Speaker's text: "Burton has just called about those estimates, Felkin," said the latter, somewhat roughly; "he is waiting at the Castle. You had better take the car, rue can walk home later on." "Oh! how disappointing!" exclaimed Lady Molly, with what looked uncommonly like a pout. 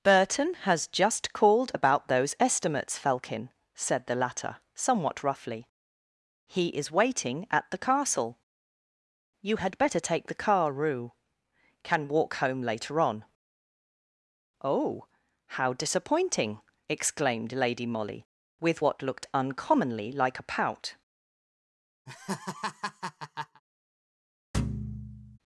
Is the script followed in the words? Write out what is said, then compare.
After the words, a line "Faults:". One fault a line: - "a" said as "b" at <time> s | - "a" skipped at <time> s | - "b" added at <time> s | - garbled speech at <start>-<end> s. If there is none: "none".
"Burton has just called about those estimates, Felkin," said the latter, somewhat roughly; "he is waiting at the Castle. You had better take the car, rue can walk home later on." "Oh! how disappointing!" exclaimed Lady Molly, with what looked uncommonly like a pout.
Faults:
none